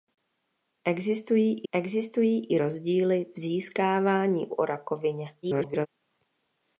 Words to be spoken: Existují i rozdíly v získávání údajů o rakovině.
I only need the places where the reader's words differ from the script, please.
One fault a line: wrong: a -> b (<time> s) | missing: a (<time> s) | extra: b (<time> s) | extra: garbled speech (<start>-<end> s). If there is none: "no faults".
extra: existují (1.7 s)
missing: údajů (4.5 s)
extra: garbled speech (5.4-5.9 s)